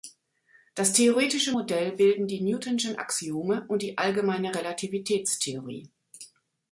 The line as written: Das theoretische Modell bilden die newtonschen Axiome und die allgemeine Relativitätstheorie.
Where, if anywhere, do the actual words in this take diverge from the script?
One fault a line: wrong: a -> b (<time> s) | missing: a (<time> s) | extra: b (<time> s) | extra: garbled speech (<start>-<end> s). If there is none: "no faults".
no faults